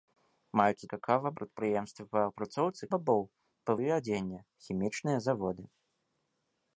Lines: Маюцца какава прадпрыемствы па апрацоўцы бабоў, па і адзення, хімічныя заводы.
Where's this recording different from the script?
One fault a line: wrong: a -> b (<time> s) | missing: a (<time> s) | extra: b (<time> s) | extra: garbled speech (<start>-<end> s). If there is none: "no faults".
no faults